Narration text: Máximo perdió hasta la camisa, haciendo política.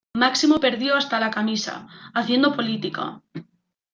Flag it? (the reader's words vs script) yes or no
no